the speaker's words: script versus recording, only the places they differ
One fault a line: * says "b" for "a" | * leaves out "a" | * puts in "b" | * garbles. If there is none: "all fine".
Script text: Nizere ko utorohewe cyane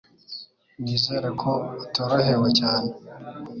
all fine